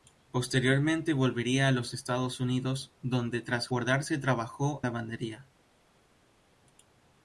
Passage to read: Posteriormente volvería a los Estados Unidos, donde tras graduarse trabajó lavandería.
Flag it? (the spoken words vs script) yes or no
no